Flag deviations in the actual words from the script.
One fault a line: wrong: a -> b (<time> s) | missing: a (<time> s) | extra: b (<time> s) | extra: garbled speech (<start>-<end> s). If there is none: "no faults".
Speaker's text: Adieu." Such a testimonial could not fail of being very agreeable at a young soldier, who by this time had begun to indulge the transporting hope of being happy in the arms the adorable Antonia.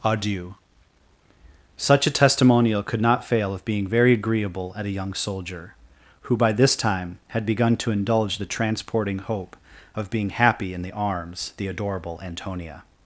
no faults